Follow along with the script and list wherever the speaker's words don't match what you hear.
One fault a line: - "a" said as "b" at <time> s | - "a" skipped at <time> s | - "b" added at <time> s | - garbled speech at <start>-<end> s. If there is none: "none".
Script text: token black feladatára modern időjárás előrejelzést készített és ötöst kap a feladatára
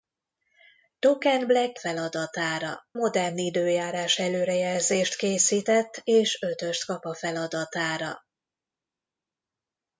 none